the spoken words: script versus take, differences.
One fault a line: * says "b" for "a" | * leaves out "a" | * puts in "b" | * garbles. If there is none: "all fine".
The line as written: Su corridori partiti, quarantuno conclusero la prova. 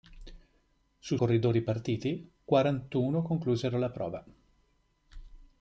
all fine